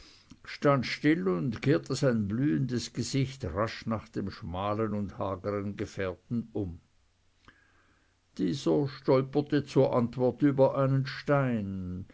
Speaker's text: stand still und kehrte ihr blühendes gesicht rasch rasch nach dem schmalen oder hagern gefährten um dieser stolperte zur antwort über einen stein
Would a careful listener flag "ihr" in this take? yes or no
yes